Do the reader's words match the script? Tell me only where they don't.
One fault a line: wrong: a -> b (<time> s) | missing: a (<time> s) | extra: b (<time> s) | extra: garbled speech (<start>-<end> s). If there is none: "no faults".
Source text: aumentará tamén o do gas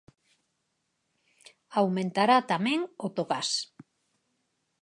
no faults